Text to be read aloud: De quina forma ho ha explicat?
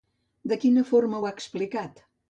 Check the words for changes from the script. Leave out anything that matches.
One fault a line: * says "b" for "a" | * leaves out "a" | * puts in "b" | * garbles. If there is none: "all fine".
all fine